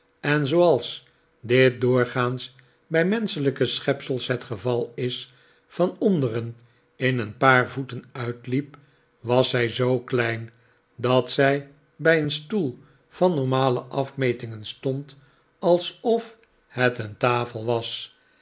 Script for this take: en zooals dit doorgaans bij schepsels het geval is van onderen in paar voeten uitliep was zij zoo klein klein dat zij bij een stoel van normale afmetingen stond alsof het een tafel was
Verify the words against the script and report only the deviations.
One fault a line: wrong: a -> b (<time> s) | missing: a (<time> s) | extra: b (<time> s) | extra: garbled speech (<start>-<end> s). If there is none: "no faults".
extra: menschelijke (3.0 s)
extra: een (7.2 s)
missing: klein (10.5 s)